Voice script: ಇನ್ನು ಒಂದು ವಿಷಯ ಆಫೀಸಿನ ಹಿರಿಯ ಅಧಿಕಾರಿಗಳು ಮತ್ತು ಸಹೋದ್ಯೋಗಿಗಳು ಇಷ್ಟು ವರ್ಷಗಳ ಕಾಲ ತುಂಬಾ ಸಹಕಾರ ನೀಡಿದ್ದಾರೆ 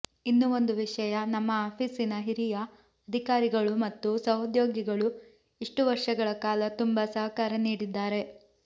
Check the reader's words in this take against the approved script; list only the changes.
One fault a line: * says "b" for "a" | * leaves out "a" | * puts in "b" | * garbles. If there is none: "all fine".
* puts in "ನಮ್ಮ"